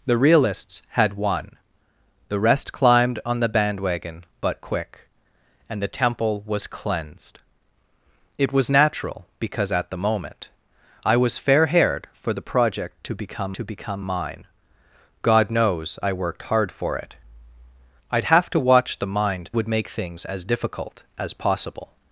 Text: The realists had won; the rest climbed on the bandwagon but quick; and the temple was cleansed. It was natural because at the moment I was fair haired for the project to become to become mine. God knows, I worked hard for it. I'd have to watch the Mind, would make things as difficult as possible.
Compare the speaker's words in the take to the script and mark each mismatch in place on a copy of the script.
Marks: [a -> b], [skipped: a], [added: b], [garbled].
The realists had won; the rest climbed on the bandwagon but quick; and the temple was cleansed. It was natural because at the moment I was fair haired for the project to become to become mine. God knows, I worked hard for it. I'd have to watch the Mind, would make things as difficult as possible.